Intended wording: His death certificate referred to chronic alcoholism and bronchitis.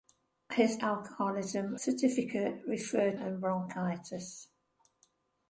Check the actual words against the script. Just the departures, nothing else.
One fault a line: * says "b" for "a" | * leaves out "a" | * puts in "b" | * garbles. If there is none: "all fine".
* says "alcoholism" for "death"
* leaves out "to chronic alcoholism"